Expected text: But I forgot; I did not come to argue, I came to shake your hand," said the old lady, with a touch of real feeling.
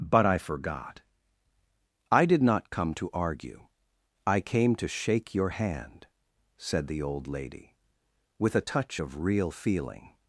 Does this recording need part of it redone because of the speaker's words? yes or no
no